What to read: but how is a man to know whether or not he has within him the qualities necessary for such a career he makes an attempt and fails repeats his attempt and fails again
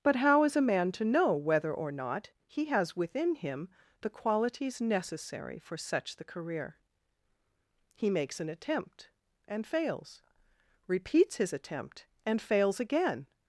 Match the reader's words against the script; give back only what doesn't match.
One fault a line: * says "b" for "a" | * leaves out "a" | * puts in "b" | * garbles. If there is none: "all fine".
* says "the" for "a"